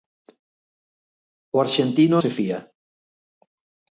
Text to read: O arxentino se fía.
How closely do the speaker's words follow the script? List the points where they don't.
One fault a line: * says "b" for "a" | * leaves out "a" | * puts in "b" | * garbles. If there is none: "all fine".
all fine